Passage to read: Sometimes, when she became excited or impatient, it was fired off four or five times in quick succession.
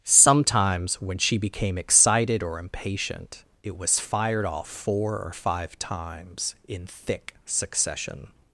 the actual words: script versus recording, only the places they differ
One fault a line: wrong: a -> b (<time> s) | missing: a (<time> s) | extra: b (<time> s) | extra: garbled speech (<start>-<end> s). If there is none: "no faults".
wrong: quick -> thick (6.9 s)